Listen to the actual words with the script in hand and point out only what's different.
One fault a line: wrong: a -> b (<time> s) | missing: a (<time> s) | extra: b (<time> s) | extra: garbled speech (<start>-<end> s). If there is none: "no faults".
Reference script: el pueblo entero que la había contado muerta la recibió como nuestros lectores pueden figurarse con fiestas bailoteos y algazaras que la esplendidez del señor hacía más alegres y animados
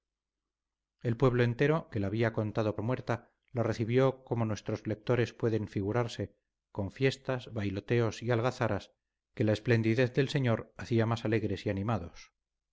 no faults